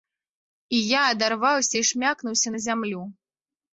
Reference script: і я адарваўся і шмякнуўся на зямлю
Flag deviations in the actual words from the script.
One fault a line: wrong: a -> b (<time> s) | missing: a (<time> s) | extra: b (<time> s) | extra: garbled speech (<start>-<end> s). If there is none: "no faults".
no faults